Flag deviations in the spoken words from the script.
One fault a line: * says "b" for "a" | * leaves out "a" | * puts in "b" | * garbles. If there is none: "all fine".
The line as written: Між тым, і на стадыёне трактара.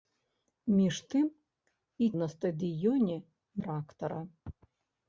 all fine